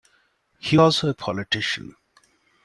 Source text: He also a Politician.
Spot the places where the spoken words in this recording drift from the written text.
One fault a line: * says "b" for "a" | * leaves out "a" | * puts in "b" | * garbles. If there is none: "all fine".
all fine